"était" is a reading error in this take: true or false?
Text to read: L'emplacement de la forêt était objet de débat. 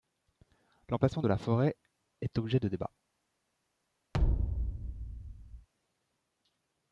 true